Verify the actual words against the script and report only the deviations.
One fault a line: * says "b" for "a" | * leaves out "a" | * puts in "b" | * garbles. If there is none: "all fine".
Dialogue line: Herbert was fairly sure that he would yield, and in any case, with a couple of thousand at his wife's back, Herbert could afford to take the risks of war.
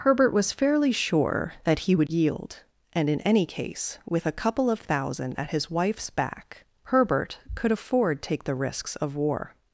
* leaves out "to"